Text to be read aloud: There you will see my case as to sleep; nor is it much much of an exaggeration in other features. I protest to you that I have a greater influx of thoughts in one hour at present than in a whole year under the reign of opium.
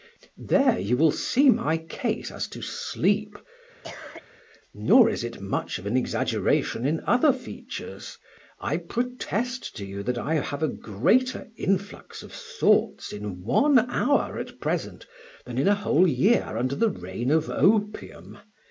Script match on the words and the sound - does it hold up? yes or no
no